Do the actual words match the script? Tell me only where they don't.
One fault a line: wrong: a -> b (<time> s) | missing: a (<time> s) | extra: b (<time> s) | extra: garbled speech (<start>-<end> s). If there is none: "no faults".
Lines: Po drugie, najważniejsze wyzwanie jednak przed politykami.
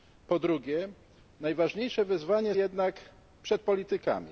no faults